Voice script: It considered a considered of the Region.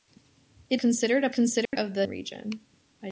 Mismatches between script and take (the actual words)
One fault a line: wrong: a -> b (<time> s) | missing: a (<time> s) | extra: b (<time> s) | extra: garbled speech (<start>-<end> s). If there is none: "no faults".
no faults